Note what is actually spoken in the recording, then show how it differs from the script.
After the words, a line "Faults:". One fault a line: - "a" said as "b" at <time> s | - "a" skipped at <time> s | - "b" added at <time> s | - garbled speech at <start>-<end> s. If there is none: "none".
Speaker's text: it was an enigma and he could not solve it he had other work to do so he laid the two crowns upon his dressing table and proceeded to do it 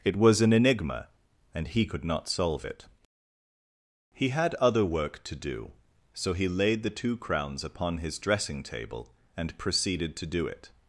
it was an enigma and he could not solve it he had other work to do so he laid the two crowns upon his dressing table and proceeded to do it
Faults:
none